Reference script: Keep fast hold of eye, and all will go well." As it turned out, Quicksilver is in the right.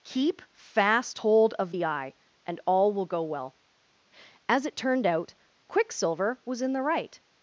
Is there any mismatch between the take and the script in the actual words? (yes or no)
yes